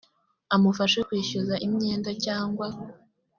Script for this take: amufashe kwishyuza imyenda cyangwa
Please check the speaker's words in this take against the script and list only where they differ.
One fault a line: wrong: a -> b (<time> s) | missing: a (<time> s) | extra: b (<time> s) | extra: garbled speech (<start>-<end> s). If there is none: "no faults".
no faults